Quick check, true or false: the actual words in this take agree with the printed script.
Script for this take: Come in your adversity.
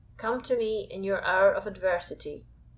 false